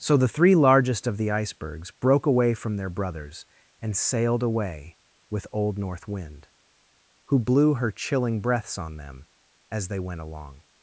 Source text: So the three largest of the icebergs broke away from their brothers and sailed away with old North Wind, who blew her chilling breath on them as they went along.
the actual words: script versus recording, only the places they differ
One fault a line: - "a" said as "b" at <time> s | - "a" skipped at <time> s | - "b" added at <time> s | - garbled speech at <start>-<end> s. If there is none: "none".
- "breath" said as "breaths" at 8.4 s